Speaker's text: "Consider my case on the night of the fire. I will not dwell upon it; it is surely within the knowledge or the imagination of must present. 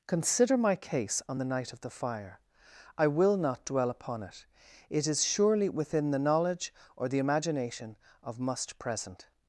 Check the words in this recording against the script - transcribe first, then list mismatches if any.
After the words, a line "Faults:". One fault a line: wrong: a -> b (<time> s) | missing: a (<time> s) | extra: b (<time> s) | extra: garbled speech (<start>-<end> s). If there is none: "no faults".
"Consider my case on the night of the fire. I will not dwell upon it; it is surely within the knowledge or the imagination of must present.
Faults:
no faults